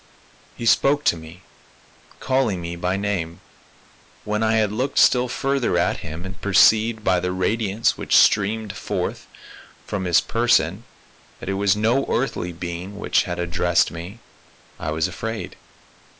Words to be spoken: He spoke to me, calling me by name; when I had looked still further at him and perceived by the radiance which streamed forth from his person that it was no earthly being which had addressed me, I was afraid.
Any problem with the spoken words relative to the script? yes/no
no